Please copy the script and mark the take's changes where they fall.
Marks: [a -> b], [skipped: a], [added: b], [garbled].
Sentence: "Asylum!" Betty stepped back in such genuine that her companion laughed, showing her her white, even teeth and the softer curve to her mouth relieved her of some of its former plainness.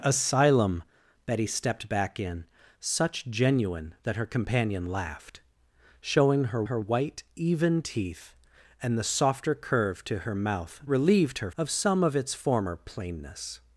"Asylum!" Betty stepped back in such genuine that her companion laughed, showing her her white, even teeth and the softer curve to her mouth relieved her of some of its former plainness.